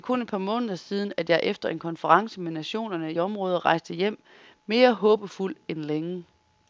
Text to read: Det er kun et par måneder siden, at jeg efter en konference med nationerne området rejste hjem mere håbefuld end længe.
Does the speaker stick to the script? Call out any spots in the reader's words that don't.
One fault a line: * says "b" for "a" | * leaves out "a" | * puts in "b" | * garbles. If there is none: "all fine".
all fine